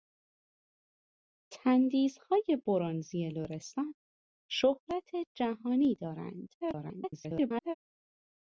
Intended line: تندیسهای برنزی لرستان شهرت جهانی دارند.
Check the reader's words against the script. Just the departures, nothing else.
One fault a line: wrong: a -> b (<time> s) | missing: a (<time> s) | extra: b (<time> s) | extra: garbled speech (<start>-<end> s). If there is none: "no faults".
extra: garbled speech (6.6-7.7 s)